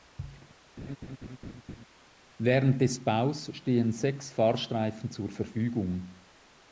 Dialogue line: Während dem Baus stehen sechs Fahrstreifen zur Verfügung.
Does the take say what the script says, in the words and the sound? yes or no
no